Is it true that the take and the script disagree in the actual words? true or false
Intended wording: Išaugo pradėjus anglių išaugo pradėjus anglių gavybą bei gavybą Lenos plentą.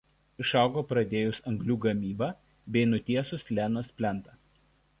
true